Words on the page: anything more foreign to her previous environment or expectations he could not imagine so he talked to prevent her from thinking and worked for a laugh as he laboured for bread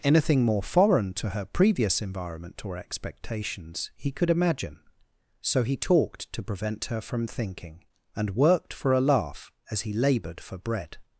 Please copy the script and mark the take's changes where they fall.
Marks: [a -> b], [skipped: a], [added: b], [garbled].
anything more foreign to her previous environment or expectations he could [skipped: not] imagine so he talked to prevent her from thinking and worked for a laugh as he laboured for bread